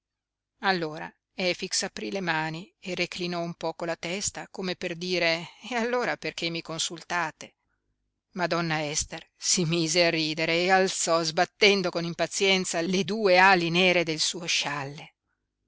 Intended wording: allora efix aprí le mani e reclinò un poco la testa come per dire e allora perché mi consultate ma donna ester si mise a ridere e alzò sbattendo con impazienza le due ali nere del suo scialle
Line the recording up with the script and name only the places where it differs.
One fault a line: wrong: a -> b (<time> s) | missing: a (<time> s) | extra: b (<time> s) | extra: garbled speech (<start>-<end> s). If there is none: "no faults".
no faults